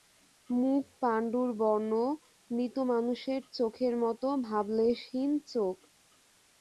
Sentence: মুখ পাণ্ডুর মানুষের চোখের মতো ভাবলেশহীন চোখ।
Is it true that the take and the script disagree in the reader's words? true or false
true